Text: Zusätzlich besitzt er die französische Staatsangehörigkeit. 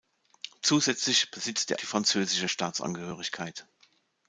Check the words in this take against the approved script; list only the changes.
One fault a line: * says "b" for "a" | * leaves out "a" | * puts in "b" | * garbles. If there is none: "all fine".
all fine